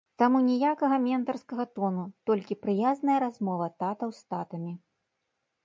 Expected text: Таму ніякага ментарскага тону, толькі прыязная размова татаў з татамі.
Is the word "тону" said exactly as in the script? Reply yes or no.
yes